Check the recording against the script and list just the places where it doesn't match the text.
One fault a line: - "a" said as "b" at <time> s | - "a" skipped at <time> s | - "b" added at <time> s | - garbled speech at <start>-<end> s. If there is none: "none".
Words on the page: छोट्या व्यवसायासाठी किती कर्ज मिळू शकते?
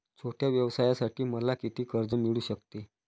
- "मला" added at 1.2 s